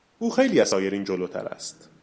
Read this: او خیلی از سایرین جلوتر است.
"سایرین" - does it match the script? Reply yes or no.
yes